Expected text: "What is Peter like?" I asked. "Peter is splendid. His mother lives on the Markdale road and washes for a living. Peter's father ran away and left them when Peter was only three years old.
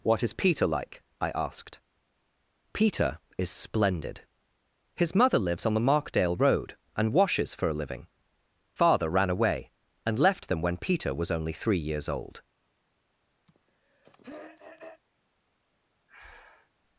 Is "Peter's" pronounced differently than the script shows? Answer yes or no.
yes